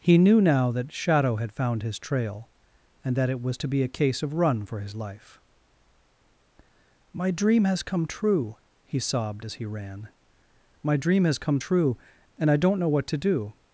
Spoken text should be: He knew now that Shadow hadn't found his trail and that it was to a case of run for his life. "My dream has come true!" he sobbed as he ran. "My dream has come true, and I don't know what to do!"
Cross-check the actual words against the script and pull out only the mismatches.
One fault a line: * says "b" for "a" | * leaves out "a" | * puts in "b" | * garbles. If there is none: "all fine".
* says "had" for "hadn't"
* puts in "be"